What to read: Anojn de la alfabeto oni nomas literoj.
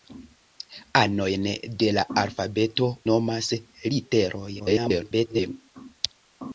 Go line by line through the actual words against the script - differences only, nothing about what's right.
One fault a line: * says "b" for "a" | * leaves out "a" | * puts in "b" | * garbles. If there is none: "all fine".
* leaves out "oni"
* garbles